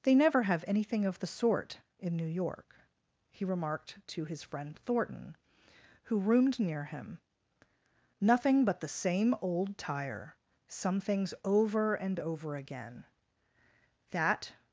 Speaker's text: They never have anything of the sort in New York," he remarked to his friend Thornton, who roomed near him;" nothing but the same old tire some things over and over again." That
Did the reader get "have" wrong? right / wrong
right